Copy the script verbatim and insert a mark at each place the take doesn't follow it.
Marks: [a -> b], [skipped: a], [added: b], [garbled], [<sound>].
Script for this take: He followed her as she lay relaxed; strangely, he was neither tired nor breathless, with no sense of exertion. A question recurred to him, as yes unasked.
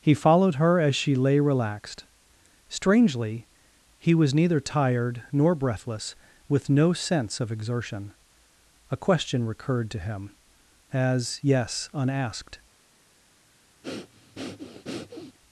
He followed her as she lay relaxed; strangely, he was neither tired nor breathless, with no sense of exertion. A question recurred to him, as yes unasked. [breath]